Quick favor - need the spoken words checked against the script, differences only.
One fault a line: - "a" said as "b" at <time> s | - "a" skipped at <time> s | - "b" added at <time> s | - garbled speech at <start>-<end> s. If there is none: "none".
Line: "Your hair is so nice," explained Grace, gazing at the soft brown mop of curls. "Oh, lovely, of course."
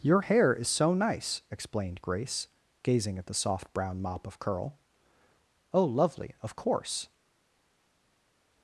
- "curls" said as "curl" at 4.4 s